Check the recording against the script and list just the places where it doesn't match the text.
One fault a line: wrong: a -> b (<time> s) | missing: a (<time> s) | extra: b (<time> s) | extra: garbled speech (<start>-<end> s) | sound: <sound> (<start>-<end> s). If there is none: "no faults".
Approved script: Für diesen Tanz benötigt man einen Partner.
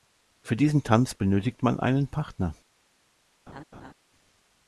sound: laugh (3.5-3.9 s)